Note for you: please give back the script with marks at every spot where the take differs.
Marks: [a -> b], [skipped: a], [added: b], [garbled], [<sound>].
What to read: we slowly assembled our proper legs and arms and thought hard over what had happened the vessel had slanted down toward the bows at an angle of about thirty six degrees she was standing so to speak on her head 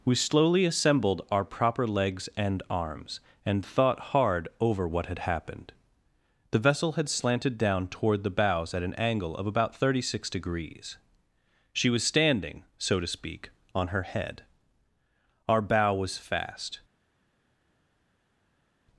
we slowly assembled our proper legs and arms and thought hard over what had happened the vessel had slanted down toward the bows at an angle of about thirty six degrees she was standing so to speak on her head [added: our bow was fast]